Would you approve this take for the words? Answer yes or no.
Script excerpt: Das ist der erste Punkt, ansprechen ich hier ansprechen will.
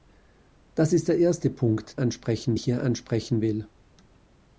yes